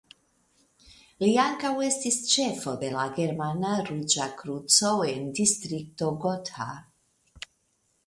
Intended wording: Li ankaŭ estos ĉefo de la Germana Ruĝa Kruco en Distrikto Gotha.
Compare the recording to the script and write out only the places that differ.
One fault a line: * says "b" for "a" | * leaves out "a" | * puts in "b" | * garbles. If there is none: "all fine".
* says "estis" for "estos"